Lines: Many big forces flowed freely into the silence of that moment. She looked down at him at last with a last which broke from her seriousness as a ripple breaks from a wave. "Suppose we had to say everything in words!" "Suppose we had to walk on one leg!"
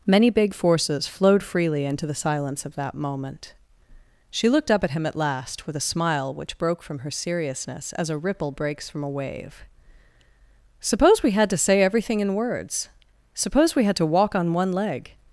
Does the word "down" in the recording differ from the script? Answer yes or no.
yes